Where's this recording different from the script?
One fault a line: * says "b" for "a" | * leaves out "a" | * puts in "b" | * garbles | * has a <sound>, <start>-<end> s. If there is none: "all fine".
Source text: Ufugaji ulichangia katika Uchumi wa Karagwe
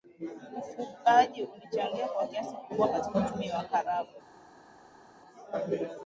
* puts in "kwa kiasi kikubwa"